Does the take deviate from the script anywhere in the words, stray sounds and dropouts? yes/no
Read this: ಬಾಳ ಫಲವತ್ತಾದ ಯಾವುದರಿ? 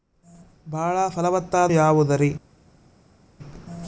no